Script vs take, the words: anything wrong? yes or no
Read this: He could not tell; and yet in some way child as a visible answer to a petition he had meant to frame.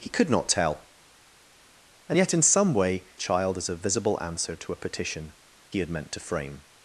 no